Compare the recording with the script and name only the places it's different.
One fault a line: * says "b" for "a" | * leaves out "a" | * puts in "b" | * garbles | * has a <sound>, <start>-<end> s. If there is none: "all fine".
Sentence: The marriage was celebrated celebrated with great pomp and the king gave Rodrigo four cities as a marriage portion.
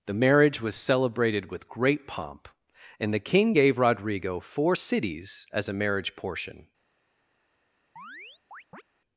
* leaves out "celebrated"
* has a chirp, 8.0-8.8 s